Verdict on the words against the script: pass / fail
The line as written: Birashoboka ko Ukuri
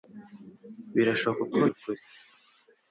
pass